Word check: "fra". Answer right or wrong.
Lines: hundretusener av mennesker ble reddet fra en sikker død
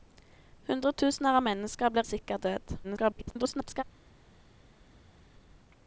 wrong